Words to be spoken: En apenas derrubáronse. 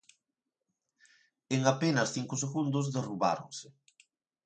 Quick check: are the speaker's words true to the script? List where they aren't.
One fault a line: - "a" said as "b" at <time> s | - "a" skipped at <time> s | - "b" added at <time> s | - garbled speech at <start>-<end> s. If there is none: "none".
- "cinco segundos" added at 2.1 s